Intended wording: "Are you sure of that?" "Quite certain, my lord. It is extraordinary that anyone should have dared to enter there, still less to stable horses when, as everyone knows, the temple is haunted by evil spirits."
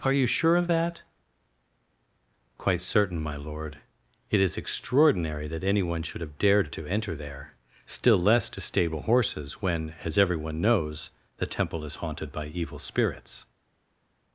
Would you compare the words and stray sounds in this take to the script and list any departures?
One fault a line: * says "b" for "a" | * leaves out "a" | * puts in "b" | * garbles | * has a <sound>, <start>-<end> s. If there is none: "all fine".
all fine